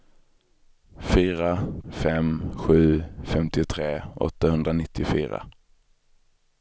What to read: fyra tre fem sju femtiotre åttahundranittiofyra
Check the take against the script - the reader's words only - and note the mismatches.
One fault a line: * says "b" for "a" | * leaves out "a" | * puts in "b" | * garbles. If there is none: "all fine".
* leaves out "tre"